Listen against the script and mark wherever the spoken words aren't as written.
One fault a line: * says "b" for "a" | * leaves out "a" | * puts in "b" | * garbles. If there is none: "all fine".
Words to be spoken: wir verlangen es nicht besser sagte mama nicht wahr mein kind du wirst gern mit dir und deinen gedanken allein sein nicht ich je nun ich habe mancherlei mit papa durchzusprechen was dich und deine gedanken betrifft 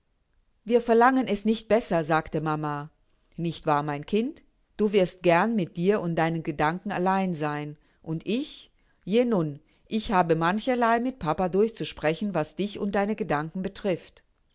* says "und" for "nicht"